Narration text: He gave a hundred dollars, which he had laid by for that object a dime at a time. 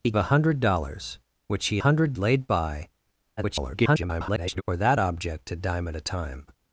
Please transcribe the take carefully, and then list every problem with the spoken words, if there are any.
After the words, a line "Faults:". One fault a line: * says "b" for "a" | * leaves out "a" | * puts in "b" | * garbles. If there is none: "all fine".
He a hundred dollars, which he hundred laid by [garbled] for that object a dime at a time.
Faults:
* leaves out "gave"
* says "hundred" for "had"
* garbles